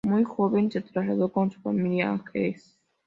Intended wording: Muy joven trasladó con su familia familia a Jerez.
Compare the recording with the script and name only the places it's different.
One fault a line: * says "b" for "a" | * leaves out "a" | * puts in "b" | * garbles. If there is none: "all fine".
* puts in "se"
* leaves out "familia"